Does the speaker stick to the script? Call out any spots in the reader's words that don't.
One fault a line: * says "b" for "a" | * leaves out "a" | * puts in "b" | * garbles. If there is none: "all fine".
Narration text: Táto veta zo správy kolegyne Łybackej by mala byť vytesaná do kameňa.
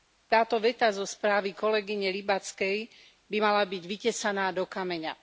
all fine